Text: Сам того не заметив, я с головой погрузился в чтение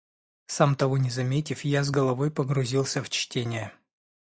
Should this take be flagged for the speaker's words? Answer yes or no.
no